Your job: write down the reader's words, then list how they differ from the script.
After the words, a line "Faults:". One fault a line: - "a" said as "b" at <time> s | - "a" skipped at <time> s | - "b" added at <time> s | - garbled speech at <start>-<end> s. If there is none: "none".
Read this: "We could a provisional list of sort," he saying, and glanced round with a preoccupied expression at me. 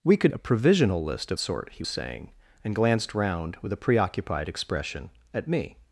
"We could a provisional list of sort," he saying, and glanced round with a preoccupied expression at me.
Faults:
none